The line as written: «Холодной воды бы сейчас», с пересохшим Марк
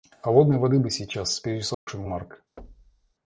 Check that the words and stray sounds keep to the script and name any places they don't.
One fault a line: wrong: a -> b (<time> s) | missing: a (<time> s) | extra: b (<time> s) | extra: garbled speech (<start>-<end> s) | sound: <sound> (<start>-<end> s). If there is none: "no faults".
sound: dropout (1.7-1.9 s)
sound: thud (2.6-3.1 s)